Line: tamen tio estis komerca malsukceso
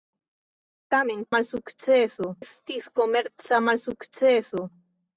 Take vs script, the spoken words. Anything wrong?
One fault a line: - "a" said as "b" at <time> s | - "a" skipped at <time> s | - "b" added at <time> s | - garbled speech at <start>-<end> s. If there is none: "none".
- "tio" said as "malsukceso" at 1.4 s